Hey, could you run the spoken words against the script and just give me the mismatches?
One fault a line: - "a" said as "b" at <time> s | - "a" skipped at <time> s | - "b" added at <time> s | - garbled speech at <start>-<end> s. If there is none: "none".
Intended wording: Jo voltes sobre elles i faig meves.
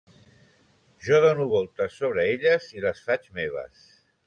- "dono" added at 1.2 s
- "les" added at 2.9 s